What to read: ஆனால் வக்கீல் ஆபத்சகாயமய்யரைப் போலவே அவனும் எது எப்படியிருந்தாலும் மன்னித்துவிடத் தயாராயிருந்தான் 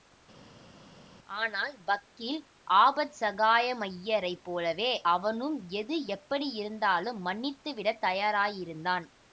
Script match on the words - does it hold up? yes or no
yes